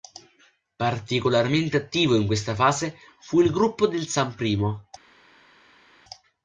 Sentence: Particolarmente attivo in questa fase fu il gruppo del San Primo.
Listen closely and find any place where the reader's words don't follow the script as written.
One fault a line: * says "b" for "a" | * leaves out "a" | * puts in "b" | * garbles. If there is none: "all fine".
all fine